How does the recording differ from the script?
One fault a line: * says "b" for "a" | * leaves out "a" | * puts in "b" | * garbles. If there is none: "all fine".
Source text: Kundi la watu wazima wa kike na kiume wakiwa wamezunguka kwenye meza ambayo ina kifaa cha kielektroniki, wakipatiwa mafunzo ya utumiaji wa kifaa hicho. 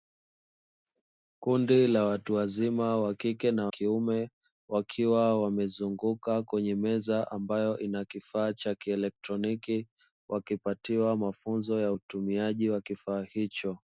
all fine